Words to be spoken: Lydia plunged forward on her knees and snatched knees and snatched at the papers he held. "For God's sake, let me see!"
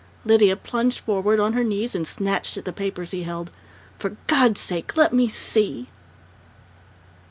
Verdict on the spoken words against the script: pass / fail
fail